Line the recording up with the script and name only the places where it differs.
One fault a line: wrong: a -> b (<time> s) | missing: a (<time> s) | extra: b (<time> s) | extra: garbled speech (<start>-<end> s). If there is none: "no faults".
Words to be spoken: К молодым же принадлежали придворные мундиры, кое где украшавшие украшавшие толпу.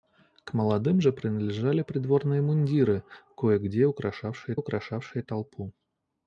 no faults